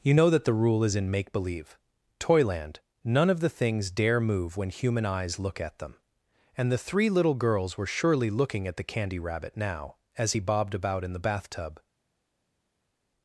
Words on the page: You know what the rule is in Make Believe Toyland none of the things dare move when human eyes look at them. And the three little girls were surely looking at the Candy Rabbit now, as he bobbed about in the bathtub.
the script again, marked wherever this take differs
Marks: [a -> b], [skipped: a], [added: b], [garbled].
You know [what -> that] the rule is in Make Believe Toyland none of the things dare move when human eyes look at them. And the three little girls were surely looking at the Candy Rabbit now, as he bobbed about in the bathtub.